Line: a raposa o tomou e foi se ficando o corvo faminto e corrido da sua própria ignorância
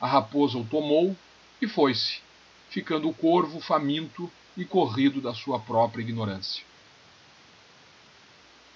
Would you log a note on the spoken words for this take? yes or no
no